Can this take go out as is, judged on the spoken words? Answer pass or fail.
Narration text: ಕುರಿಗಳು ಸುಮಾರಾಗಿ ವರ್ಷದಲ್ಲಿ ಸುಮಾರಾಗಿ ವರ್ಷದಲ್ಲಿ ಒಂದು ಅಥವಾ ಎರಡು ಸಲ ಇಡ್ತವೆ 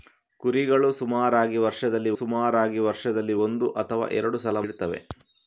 pass